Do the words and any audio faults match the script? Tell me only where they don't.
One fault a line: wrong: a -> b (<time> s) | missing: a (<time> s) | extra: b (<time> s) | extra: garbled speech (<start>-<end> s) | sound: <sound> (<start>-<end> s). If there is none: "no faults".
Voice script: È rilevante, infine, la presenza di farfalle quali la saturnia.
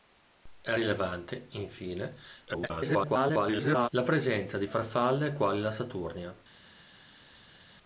extra: garbled speech (2.4-3.9 s)